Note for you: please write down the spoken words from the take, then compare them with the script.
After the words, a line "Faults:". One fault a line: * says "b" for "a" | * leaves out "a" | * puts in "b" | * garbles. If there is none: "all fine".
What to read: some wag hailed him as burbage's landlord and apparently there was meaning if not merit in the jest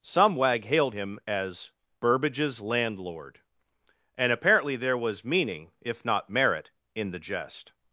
some wag hailed him as burbage's landlord and apparently there was meaning if not merit in the jest
Faults:
all fine